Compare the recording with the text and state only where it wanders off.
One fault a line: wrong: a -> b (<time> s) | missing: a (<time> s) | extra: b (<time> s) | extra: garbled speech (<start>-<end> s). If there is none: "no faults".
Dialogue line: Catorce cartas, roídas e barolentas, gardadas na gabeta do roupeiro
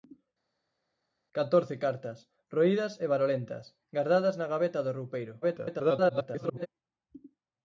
extra: garbled speech (5.4-6.7 s)